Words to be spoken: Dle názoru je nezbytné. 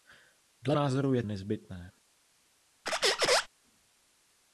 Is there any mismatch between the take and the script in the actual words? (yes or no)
no